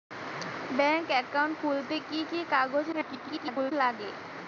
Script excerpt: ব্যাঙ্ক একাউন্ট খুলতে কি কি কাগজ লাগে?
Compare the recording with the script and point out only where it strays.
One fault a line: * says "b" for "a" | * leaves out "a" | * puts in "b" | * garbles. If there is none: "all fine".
* garbles